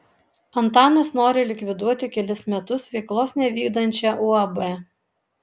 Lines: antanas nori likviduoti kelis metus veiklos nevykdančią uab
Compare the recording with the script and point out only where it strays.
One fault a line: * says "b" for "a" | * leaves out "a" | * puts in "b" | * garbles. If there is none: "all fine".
all fine